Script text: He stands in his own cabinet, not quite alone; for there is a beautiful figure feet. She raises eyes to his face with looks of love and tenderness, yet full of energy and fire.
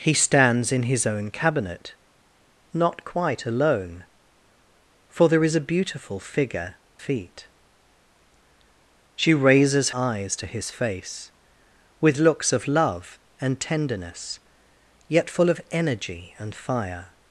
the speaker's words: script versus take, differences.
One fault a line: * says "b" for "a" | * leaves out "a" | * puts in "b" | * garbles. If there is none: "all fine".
all fine